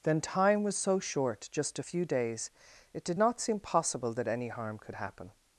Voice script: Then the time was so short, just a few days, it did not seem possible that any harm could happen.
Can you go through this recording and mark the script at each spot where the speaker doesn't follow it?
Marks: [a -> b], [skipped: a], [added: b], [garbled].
Then [skipped: the] time was so short, just a few days, it did not seem possible that any harm could happen.